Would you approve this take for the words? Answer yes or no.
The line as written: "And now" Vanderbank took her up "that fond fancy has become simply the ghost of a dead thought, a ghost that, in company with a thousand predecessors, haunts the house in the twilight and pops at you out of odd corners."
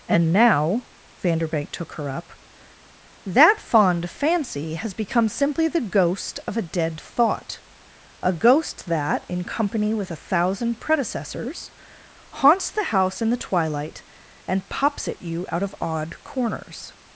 yes